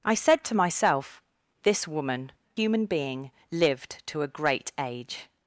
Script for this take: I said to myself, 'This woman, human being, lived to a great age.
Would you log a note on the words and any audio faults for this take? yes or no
no